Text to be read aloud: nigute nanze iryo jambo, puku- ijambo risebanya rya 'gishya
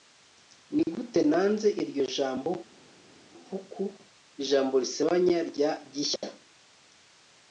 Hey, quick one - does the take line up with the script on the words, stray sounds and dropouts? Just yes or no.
yes